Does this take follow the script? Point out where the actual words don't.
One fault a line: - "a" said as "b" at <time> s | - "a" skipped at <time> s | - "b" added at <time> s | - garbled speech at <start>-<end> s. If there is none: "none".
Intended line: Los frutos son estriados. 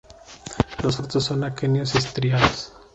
- "aquenios" added at 1.4 s